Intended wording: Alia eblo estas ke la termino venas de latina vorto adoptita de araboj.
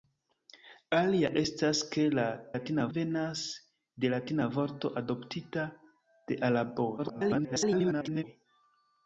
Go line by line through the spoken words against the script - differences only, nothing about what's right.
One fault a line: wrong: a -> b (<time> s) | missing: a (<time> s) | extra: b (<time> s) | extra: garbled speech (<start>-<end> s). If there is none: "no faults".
missing: eblo (1.3 s)
wrong: termino -> latina (2.5 s)
extra: garbled speech (7.0-8.2 s)